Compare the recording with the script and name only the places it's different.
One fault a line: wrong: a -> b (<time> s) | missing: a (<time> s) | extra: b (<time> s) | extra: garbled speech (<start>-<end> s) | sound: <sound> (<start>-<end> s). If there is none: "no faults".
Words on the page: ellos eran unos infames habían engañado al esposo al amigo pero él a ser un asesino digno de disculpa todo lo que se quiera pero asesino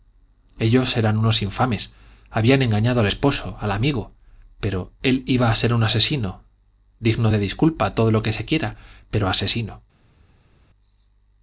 extra: iba (5.3 s)